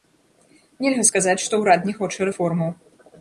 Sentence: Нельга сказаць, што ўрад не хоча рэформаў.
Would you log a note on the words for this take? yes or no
no